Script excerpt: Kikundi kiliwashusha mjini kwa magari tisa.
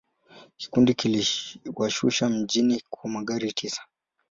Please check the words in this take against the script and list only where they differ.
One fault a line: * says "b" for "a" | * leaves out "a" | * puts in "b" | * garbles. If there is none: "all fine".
all fine